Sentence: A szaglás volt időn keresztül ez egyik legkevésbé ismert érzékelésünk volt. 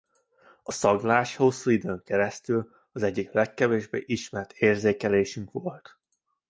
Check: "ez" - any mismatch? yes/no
yes